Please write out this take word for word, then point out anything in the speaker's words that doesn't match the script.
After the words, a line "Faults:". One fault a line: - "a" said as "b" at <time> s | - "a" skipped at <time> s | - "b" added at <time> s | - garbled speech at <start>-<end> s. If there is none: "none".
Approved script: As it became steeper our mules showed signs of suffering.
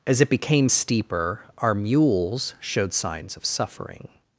As it became steeper our mules showed signs of suffering.
Faults:
none